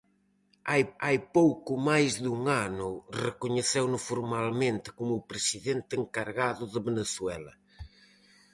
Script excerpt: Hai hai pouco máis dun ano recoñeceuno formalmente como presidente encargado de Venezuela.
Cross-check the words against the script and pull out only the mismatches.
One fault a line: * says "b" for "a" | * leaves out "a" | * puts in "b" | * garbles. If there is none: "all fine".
all fine